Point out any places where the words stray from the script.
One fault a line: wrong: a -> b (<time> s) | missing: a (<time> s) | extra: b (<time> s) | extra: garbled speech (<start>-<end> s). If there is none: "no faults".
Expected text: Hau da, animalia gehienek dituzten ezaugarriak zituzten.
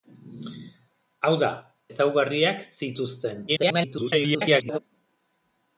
missing: animalia gehienek dituzten (1.5 s)
extra: garbled speech (3.5-4.8 s)